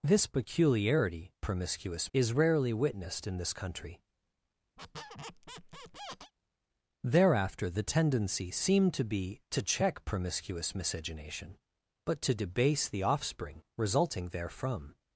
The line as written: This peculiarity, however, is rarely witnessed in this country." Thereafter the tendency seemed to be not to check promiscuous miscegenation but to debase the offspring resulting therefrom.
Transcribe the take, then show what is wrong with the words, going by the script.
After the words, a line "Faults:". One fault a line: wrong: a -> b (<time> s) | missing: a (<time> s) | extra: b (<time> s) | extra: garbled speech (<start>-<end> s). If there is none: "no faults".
This peculiarity, promiscuous, is rarely witnessed in this country." Thereafter the tendency seemed to be to check promiscuous miscegenation but to debase the offspring resulting therefrom.
Faults:
wrong: however -> promiscuous (1.4 s)
missing: not (9.4 s)